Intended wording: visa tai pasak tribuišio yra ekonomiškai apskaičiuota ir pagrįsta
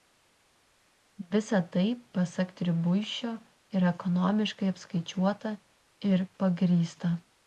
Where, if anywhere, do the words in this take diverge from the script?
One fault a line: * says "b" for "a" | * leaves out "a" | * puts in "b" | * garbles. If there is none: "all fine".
all fine